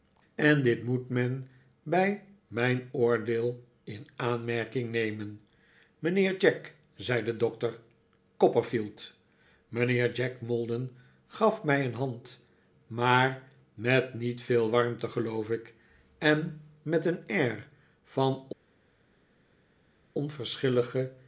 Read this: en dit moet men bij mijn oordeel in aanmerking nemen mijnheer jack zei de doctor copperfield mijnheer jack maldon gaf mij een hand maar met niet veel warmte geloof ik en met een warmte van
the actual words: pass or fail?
fail